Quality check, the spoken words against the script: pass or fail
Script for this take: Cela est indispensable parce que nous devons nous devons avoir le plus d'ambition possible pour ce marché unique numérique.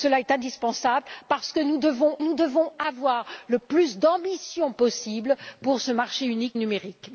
pass